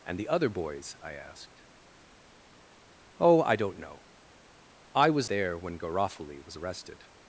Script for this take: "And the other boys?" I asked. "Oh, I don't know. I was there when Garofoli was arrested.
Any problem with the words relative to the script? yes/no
no